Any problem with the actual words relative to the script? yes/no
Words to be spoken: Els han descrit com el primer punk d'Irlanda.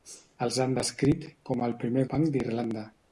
no